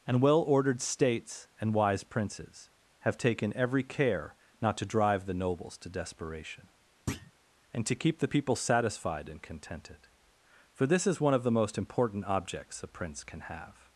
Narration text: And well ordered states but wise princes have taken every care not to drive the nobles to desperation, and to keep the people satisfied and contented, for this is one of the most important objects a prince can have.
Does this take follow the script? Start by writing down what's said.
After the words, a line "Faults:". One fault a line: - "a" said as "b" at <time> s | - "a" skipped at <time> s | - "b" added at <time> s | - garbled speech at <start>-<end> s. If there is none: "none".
And well ordered states and wise princes have taken every care not to drive the nobles to desperation, and to keep the people satisfied and contented, for this is one of the most important objects a prince can have.
Faults:
- "but" said as "and" at 1.6 s